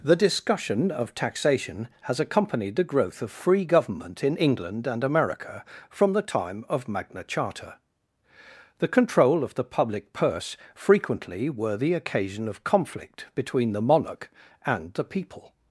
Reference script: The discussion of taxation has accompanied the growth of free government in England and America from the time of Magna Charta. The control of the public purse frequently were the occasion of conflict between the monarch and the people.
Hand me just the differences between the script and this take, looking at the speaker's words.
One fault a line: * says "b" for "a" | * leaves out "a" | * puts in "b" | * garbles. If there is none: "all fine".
all fine